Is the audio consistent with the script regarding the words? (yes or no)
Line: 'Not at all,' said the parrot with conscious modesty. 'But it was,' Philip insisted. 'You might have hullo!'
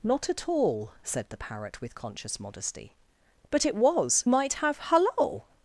no